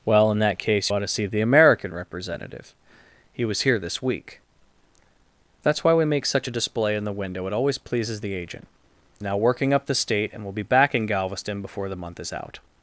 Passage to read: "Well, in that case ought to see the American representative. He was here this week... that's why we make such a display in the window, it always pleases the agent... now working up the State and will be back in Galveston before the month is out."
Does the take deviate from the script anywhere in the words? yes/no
no